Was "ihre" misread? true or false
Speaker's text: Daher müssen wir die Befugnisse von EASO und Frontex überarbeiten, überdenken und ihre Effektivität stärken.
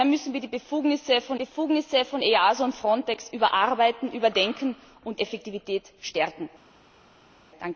true